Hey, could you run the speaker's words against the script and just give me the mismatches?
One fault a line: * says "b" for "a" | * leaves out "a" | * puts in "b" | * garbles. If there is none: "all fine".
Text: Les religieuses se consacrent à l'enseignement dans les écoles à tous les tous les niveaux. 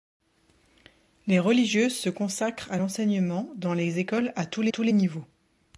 all fine